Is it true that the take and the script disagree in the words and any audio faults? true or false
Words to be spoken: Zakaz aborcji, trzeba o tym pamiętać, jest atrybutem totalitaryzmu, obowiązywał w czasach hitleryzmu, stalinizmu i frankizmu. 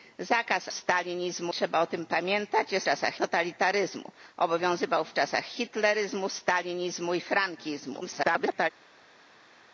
true